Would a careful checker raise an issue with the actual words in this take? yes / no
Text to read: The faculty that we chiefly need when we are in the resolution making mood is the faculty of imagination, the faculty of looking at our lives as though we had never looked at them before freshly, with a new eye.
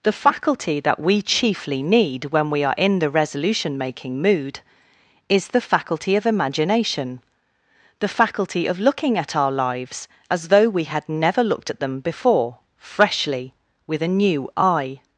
no